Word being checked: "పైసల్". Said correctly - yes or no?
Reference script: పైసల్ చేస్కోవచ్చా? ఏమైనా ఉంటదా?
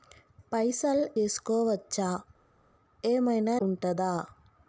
yes